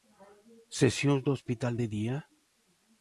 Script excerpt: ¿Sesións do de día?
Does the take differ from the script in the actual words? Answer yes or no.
yes